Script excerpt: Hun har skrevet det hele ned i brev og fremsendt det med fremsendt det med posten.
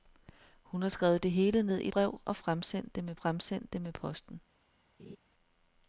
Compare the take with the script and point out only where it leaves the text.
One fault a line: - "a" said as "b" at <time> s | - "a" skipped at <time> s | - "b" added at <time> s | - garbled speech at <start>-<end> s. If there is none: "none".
none